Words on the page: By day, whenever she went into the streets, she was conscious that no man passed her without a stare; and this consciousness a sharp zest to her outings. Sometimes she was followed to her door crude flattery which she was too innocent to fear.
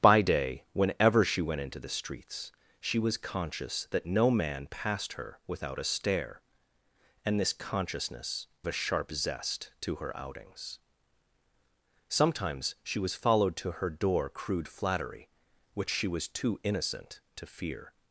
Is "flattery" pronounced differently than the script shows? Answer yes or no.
no